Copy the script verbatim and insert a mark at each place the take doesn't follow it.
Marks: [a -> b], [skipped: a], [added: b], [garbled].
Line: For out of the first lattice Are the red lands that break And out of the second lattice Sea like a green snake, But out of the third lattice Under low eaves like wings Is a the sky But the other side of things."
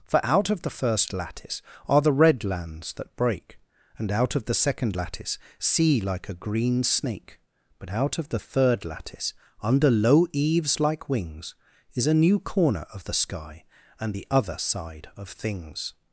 For out of the first lattice Are the red lands that break And out of the second lattice Sea like a green snake, But out of the third lattice Under low eaves like wings Is a [added: new corner of] the sky [But -> And] the other side of things."